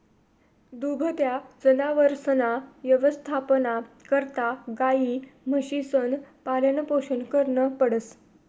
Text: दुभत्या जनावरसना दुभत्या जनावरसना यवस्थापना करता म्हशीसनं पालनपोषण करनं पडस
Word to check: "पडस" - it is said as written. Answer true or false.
true